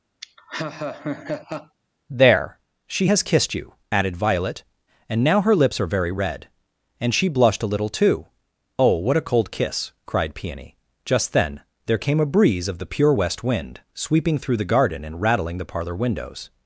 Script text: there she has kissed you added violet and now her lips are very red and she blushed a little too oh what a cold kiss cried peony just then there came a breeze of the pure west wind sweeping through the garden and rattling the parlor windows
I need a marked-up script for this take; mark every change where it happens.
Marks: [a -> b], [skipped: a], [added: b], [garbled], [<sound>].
[laugh] there she has kissed you added violet and now her lips are very red and she blushed a little too oh what a cold kiss cried peony just then there came a breeze of the pure west wind sweeping through the garden and rattling the parlor windows